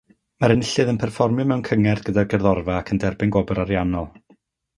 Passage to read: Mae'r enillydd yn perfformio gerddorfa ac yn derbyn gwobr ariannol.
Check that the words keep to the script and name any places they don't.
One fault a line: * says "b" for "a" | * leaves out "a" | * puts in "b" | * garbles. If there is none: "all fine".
* puts in "mewn cyngerdd gyda'r"